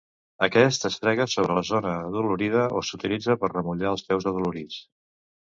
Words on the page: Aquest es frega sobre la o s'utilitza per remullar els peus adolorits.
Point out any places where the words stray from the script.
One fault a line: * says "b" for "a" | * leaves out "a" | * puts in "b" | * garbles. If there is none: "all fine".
* puts in "zona adolorida"